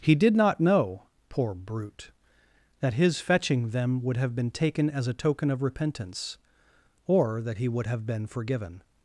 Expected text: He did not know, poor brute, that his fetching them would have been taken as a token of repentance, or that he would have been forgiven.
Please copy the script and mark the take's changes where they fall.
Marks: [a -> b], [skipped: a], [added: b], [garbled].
He did not know, poor brute, that his fetching them would have been taken as a token of repentance, or that he would have been forgiven.